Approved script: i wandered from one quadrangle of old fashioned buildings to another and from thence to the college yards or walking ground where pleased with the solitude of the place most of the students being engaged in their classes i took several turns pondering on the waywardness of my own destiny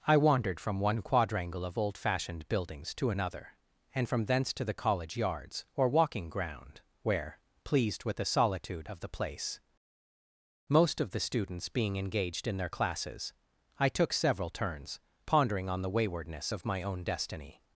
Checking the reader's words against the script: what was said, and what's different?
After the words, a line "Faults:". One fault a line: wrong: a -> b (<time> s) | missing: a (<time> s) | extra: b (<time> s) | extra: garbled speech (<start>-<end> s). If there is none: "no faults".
i wandered from one quadrangle of old fashioned buildings to another and from thence to the college yards or walking ground where pleased with the solitude of the place most of the students being engaged in their classes i took several turns pondering on the waywardness of my own destiny
Faults:
no faults